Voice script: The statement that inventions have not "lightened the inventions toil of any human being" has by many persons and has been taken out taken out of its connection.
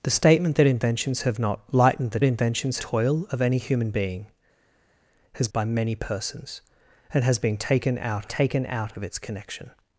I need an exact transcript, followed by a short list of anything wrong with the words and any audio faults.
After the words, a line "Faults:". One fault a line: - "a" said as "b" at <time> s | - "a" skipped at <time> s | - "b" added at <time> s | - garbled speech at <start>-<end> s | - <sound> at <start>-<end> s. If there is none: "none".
The statement that inventions have not "lightened the inventions toil of any human being" has by many persons and has been taken out taken out of its connection.
Faults:
none